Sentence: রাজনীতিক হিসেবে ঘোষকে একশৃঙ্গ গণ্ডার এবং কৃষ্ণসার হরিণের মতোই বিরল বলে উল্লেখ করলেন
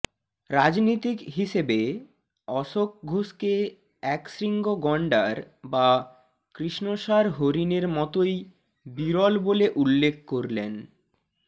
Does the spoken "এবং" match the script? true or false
false